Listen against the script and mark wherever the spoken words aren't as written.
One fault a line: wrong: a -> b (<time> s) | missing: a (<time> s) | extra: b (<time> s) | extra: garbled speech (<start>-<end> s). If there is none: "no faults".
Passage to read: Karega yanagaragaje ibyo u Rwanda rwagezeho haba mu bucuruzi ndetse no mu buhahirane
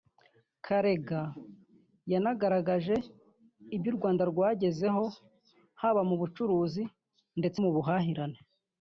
missing: no (7.6 s)